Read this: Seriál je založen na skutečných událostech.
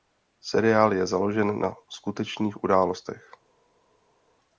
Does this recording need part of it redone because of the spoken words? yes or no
no